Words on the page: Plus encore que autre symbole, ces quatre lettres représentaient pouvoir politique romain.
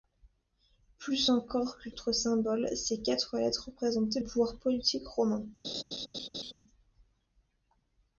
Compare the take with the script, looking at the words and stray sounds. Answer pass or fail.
fail